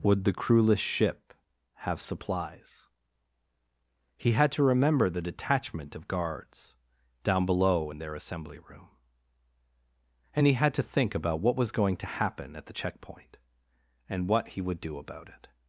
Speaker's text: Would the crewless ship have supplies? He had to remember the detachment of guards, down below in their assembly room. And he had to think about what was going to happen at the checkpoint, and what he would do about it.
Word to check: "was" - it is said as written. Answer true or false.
true